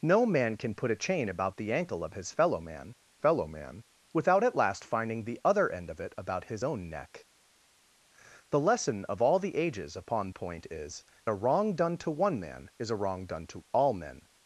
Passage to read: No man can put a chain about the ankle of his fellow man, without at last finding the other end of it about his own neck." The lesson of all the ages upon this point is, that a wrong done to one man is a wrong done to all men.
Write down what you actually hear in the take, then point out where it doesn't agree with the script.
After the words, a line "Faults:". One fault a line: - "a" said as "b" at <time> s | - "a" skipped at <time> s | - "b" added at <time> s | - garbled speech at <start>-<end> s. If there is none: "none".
No man can put a chain about the ankle of his fellow man fellow man, without at last finding the other end of it about his own neck." The lesson of all the ages upon point is, a wrong done to one man is a wrong done to all men.
Faults:
- "fellow man" added at 3.2 s
- "this" skipped at 10.3 s
- "that" skipped at 11.0 s